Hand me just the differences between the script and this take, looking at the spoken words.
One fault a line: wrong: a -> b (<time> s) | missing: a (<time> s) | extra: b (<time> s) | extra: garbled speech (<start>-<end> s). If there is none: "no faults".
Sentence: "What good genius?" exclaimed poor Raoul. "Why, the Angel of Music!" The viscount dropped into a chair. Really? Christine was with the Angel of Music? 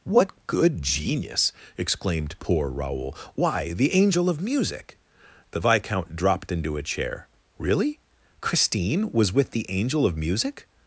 no faults